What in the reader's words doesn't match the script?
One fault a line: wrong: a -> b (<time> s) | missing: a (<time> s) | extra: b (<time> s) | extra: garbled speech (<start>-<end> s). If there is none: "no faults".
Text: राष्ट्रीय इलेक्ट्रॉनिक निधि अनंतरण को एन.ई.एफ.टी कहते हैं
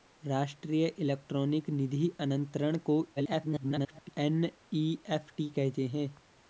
extra: garbled speech (3.2-4.1 s)